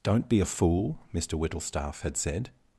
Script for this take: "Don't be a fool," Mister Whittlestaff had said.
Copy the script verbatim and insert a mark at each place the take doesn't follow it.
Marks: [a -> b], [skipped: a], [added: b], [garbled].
"Don't be a fool," Mister Whittlestaff had said.